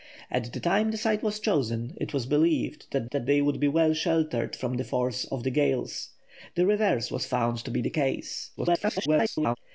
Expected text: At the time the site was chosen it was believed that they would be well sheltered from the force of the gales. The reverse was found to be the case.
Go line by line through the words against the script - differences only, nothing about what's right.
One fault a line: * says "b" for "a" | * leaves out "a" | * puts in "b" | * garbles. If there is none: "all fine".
* puts in "that"
* garbles